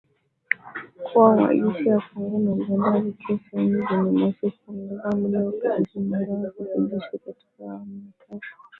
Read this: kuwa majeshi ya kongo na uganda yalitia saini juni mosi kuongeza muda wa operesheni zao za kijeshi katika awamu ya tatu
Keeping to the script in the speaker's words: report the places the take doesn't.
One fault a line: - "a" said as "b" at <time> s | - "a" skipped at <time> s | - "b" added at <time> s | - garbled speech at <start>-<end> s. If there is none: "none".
none